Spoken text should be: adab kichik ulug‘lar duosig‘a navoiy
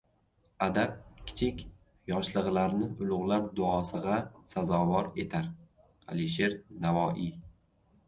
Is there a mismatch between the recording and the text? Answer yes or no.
yes